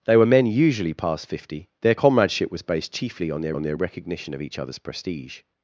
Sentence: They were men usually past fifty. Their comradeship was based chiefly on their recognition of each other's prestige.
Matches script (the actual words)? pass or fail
fail